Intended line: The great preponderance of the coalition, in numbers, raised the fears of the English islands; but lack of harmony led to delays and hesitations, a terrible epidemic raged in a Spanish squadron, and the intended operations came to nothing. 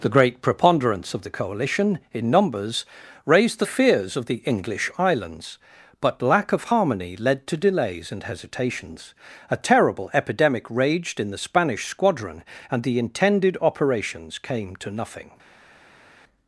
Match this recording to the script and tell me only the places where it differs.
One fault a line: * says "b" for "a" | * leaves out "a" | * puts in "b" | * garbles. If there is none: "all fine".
* says "the" for "a"